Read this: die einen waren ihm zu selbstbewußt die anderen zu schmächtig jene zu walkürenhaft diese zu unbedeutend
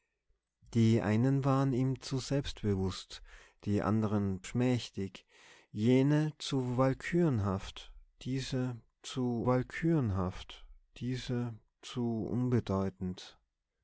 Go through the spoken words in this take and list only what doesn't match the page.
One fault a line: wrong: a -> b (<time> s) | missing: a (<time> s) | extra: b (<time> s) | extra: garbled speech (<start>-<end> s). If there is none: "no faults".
extra: schmächtig jene (4.4 s)
wrong: schmächtig jene -> walkürenhaft diese (6.8 s)